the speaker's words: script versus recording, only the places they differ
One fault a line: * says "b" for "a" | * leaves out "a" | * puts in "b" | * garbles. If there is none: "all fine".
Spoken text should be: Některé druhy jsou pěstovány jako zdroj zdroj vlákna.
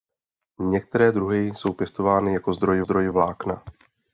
all fine